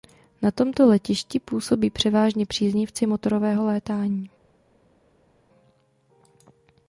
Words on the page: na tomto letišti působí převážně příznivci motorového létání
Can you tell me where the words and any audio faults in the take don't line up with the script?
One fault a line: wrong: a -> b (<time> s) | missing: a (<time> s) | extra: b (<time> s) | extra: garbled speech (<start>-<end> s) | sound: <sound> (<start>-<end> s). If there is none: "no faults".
no faults